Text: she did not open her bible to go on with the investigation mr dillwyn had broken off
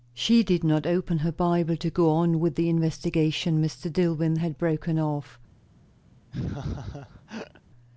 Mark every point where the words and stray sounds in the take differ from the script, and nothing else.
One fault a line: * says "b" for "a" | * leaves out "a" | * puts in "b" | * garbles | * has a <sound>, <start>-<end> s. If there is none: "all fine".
* has a laugh, 6.3-7.6 s